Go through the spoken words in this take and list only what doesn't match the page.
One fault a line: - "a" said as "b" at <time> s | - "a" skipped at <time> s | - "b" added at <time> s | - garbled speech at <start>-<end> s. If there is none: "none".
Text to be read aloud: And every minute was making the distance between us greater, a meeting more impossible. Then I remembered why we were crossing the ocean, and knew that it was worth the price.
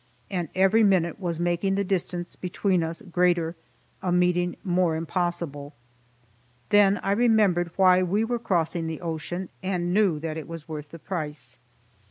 none